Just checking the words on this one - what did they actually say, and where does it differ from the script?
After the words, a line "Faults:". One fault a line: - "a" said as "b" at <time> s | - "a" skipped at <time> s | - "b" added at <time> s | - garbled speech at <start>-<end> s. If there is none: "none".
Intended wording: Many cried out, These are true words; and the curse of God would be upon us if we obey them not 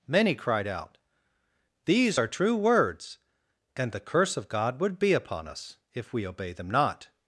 Many cried out, These are true words; and the curse of God would be upon us if we obey them not
Faults:
none